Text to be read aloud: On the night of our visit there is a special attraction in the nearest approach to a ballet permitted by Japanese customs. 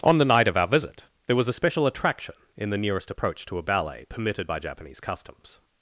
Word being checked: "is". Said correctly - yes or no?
no